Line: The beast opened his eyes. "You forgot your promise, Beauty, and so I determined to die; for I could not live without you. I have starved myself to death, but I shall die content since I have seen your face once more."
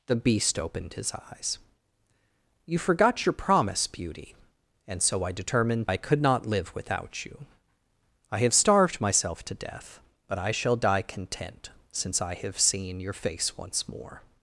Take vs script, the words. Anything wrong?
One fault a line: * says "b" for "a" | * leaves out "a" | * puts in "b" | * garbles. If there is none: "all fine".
* leaves out "to die for"